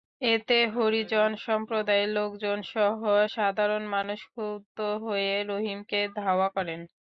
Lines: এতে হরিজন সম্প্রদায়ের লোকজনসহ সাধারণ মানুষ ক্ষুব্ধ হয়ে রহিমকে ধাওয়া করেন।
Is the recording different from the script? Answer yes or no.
no